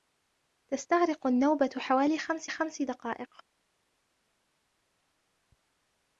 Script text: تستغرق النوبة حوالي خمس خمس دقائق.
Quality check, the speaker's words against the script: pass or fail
pass